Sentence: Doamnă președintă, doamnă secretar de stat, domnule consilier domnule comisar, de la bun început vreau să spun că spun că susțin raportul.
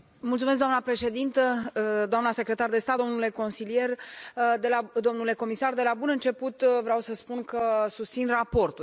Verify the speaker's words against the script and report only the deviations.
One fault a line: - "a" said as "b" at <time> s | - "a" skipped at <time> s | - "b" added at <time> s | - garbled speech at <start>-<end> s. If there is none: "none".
- "spun că" skipped at 7.9 s